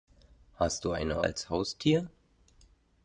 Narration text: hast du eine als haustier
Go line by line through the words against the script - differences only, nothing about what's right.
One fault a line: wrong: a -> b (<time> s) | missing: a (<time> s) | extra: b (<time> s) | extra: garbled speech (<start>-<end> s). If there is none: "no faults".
no faults